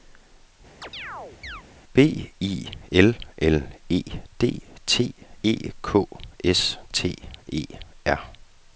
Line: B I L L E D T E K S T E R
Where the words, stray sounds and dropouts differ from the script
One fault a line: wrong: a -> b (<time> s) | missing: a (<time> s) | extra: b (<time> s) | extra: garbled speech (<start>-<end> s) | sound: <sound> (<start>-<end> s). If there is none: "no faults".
sound: chirp (0.8-1.6 s)